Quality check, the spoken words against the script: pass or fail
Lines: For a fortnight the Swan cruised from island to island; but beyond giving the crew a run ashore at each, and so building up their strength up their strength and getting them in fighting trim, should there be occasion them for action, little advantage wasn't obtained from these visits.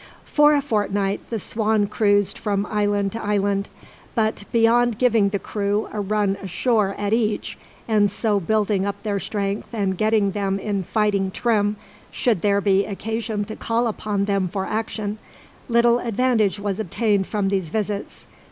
fail